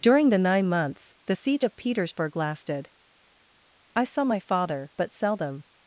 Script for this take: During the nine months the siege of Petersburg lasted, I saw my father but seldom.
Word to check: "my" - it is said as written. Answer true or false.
true